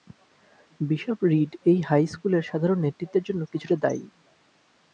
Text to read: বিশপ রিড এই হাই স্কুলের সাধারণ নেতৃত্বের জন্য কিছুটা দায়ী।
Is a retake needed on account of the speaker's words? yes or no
no